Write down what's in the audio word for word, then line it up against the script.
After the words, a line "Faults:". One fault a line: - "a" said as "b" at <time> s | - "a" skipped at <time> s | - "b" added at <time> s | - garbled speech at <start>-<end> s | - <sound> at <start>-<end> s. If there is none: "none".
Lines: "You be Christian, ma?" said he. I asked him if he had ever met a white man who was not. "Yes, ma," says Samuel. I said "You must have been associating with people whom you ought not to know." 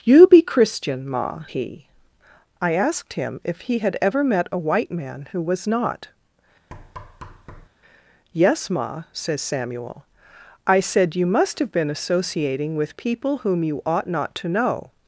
"You be Christian, ma?" he. I asked him if he had ever met a white man who was not. "Yes, ma," says Samuel. I said "You must have been associating with people whom you ought not to know."
Faults:
- "said" skipped at 1.4 s
- thud at 6.7-7.7 s